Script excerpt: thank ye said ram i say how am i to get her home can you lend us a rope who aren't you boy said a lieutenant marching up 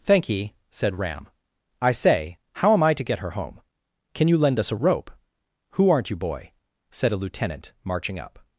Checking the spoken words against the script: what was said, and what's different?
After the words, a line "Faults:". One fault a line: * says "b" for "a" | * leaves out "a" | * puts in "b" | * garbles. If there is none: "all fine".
thank ye said ram i say how am i to get her home can you lend us a rope who aren't you boy said a lieutenant marching up
Faults:
all fine